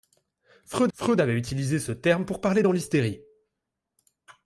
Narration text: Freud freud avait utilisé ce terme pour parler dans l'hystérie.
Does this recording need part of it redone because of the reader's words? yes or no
no